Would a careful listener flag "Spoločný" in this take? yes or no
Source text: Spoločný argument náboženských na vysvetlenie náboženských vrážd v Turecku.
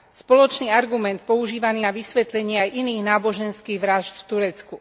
no